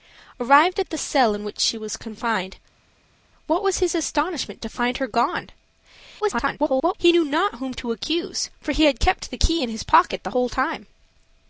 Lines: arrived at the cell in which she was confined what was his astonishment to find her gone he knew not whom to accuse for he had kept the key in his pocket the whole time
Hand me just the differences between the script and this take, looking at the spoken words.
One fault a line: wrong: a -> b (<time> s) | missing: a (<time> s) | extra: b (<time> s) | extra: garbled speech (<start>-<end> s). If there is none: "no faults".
extra: garbled speech (6.2-6.9 s)